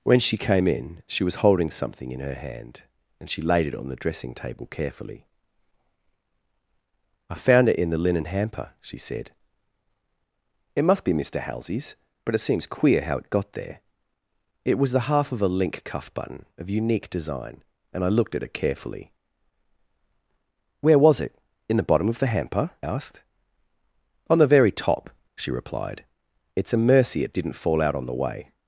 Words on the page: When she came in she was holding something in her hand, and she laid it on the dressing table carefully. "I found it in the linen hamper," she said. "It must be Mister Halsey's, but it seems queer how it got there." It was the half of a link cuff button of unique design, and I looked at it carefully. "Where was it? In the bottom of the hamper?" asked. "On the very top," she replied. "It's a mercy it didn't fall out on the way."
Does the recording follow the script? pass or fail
pass